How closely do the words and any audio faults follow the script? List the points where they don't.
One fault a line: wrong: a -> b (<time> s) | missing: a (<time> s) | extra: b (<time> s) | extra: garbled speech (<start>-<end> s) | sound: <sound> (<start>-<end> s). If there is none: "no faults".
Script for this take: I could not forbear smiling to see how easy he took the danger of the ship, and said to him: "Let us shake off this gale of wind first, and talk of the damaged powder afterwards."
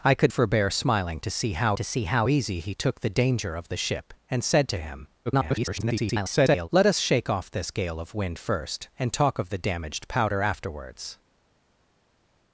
missing: not (0.3 s)
extra: to see how (1.7 s)
extra: garbled speech (5.3-6.7 s)